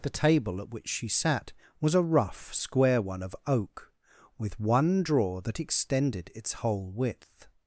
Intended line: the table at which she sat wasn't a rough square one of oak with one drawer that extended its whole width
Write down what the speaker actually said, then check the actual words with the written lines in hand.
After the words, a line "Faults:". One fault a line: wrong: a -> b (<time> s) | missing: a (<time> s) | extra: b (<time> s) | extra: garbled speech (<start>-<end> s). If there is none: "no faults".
the table at which she sat was a rough square one of oak with one drawer that extended its whole width
Faults:
wrong: wasn't -> was (1.8 s)